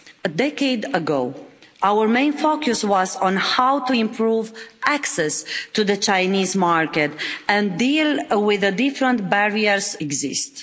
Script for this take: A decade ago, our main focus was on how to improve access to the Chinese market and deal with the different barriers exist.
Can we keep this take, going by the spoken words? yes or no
yes